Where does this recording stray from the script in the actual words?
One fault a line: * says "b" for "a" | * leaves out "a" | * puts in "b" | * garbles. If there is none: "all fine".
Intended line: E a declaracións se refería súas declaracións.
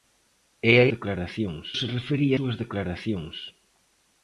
all fine